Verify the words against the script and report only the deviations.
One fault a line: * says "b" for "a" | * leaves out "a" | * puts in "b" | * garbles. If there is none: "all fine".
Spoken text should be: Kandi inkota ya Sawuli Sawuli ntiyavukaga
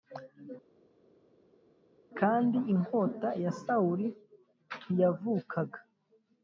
* leaves out "Sawuli"